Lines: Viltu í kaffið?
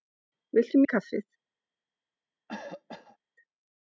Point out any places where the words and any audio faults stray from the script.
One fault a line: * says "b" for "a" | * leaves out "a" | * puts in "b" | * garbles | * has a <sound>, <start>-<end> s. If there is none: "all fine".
* has a cough, 2.5-3.2 s